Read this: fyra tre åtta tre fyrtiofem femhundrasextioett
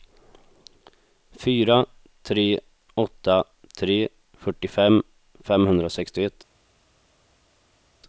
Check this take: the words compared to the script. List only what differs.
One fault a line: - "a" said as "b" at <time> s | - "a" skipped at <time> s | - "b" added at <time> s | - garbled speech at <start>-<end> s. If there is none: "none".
none